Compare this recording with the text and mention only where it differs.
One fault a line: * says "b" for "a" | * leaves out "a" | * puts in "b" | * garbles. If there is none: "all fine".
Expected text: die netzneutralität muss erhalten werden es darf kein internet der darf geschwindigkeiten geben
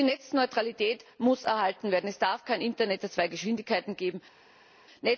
* says "zwei" for "darf"